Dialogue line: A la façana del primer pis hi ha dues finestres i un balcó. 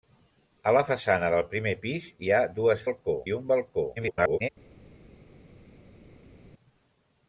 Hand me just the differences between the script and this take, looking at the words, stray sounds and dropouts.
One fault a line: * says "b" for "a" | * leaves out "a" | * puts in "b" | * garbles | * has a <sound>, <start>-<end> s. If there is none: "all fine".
* says "balcó" for "finestres"
* garbles